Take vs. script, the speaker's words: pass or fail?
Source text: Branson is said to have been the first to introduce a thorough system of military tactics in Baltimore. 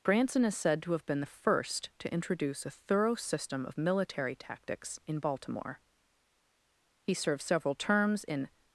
fail